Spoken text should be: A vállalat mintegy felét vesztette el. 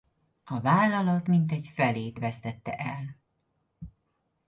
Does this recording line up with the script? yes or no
yes